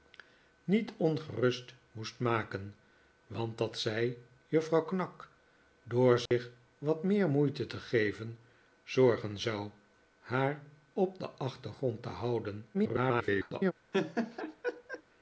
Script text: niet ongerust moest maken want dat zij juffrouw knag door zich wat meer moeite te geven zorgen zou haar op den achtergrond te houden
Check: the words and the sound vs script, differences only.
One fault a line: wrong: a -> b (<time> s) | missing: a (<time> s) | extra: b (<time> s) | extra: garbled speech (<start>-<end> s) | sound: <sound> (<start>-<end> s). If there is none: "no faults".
sound: dropout (6.3-6.3 s)
extra: garbled speech (12.7-13.7 s)
sound: laugh (13.9-15.0 s)